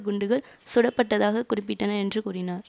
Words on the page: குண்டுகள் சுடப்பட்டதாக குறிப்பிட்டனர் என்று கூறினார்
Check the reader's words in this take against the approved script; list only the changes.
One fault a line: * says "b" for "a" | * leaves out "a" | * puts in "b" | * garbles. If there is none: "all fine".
all fine